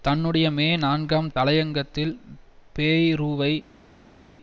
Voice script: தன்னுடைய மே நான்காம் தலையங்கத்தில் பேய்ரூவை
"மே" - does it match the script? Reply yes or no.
yes